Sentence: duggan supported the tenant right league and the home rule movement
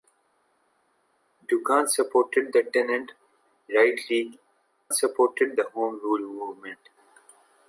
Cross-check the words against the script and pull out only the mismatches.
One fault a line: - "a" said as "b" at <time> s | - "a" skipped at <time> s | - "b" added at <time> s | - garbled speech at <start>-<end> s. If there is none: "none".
- "and" said as "supported" at 4.9 s